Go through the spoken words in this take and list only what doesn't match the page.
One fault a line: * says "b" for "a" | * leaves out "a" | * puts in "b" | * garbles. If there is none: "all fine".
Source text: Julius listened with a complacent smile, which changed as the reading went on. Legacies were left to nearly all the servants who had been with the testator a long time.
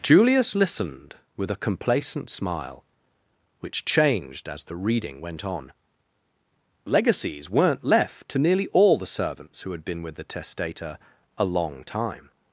* says "weren't" for "were"